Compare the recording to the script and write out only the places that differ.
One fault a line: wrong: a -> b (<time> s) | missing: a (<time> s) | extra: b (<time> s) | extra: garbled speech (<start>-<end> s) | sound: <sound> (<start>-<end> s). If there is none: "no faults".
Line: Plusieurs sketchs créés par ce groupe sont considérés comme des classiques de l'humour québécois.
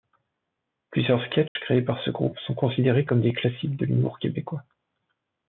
sound: dropout (1.5-1.6 s)